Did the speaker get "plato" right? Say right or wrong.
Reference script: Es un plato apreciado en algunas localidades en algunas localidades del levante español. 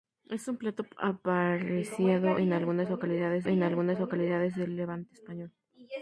right